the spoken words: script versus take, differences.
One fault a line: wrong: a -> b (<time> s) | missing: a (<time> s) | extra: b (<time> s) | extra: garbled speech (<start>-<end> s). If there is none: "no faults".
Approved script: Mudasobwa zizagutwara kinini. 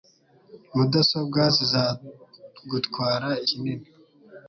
no faults